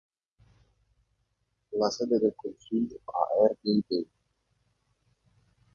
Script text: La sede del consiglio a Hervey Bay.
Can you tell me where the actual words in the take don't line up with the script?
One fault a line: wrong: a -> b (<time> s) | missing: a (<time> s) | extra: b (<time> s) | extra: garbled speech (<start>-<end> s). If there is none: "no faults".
no faults